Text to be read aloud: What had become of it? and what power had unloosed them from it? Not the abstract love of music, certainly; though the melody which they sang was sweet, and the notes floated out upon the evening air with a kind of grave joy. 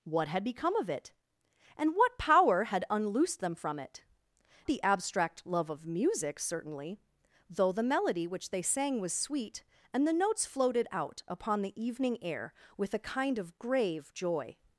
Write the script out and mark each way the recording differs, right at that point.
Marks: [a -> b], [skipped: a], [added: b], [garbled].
What had become of it? and what power had unloosed them from it? [skipped: Not] the abstract love of music, certainly; though the melody which they sang was sweet, and the notes floated out upon the evening air with a kind of grave joy.